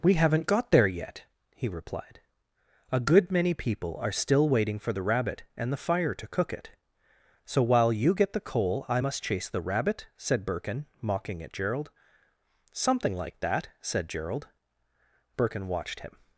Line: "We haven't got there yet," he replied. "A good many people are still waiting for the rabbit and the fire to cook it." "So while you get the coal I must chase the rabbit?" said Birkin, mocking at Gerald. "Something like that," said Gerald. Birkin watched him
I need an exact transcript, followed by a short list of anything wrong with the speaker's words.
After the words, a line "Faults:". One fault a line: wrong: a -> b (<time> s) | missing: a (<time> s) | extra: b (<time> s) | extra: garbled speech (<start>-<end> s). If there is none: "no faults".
"We haven't got there yet," he replied. "A good many people are still waiting for the rabbit and the fire to cook it." "So while you get the coal I must chase the rabbit?" said Birkin, mocking at Gerald. "Something like that," said Gerald. Birkin watched him
Faults:
no faults